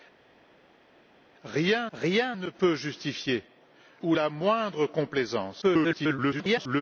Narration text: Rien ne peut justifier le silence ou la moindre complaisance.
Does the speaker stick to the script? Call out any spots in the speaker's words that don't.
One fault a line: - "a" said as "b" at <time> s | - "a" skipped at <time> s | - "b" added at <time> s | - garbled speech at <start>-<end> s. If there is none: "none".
- "rien" added at 1.9 s
- "le silence" skipped at 3.4 s
- garbled speech at 5.6-6.8 s